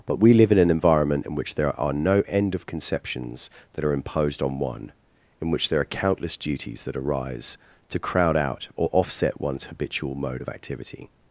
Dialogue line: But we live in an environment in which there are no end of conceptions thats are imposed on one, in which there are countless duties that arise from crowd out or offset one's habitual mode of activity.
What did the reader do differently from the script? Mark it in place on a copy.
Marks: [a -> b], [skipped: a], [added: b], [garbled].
But we live in an environment in which there are no end of conceptions [thats -> that] are imposed on one, in which there are countless duties that arise [from -> to] crowd out or offset one's habitual mode of activity.